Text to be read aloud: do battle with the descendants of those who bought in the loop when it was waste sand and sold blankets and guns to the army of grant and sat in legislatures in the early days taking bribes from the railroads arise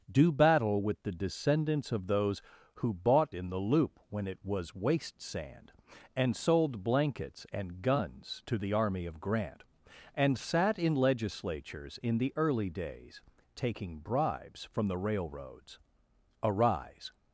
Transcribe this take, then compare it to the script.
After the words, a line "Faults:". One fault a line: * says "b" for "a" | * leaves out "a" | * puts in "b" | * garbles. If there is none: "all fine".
do battle with the descendants of those who bought in the loop when it was waste sand and sold blankets and guns to the army of grant and sat in legislatures in the early days taking bribes from the railroads arise
Faults:
all fine